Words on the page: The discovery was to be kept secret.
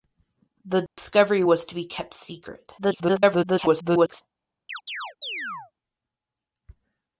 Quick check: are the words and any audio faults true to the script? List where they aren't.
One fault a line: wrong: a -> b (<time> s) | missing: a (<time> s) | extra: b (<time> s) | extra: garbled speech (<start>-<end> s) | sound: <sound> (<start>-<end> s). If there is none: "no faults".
sound: dropout (0.9-1.0 s)
extra: garbled speech (2.8-4.2 s)
sound: chirp (4.7-5.7 s)